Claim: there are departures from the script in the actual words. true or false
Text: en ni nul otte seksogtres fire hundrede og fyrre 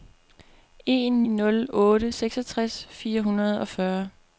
true